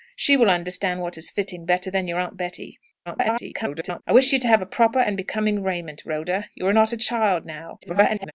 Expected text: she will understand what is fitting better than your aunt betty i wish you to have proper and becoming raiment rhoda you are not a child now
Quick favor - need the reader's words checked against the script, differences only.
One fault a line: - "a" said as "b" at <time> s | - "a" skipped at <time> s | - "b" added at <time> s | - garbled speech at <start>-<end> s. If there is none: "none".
- garbled speech at 3.1-4.0 s
- garbled speech at 7.8-8.3 s